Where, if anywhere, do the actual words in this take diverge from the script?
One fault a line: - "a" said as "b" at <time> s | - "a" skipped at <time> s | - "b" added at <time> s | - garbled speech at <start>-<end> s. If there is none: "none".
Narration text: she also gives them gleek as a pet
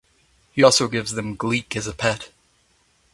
- "she" said as "he" at 0.5 s